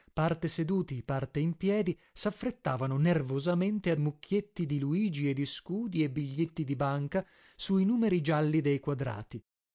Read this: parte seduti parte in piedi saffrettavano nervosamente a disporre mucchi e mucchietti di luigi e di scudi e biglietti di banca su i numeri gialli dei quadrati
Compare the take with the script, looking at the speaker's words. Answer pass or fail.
fail